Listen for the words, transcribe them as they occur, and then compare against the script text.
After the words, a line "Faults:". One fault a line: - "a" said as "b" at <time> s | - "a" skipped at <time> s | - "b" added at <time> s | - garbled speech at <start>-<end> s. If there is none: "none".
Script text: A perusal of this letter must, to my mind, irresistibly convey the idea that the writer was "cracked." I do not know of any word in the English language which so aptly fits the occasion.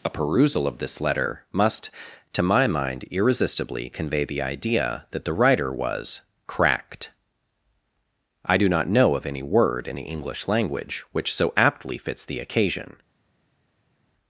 A perusal of this letter must, to my mind, irresistibly convey the idea that the writer was "cracked." I do not know of any word in the English language which so aptly fits the occasion.
Faults:
none